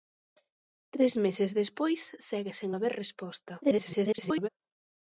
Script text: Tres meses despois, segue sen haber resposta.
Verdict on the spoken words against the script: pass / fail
fail